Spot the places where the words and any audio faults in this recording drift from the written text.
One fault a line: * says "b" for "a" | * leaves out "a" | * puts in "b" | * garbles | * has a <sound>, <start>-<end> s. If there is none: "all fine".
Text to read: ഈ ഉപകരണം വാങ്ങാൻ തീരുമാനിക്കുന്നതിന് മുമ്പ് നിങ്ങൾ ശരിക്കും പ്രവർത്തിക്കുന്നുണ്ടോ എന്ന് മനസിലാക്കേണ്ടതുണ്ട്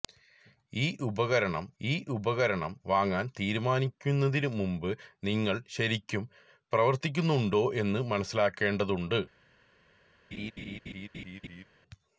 * puts in "ഈ ഉപകരണം"
* has a laugh, 10.3-11.6 s